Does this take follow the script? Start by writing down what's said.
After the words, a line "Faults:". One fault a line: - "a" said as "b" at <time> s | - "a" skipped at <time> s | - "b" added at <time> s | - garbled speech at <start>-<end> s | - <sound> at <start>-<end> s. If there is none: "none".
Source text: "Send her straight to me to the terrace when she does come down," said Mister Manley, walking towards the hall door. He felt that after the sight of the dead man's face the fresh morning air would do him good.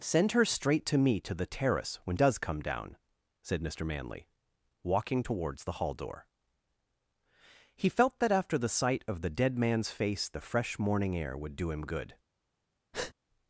"Send her straight to me to the terrace when does come down," said Mister Manley, walking towards the hall door. He felt that after the sight of the dead man's face the fresh morning air would do him good.
Faults:
- "she" skipped at 2.2 s
- breath at 12.9-13.1 s